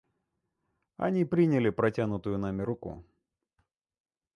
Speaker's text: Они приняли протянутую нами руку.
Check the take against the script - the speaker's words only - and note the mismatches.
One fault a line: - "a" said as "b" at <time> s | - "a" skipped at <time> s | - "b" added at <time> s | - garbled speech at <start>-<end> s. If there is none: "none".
none